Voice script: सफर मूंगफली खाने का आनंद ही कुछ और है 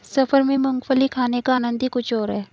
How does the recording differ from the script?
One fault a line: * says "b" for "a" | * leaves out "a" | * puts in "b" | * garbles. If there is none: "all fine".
* puts in "में"